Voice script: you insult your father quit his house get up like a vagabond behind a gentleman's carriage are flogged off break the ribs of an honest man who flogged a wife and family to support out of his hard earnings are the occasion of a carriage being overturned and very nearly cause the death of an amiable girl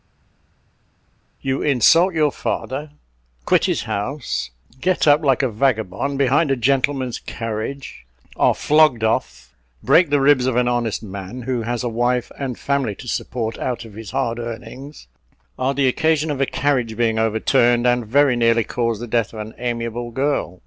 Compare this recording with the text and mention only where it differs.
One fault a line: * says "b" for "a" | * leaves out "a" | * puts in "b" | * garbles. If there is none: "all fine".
* says "has" for "flogged"